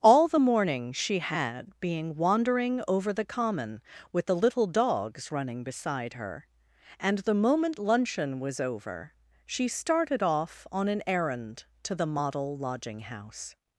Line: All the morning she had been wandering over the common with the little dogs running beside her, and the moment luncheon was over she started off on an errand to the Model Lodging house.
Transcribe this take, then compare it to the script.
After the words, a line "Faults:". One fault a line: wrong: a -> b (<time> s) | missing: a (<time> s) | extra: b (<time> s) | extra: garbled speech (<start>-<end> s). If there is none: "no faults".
All the morning she had being wandering over the common with the little dogs running beside her, and the moment luncheon was over she started off on an errand to the Model Lodging house.
Faults:
wrong: been -> being (1.8 s)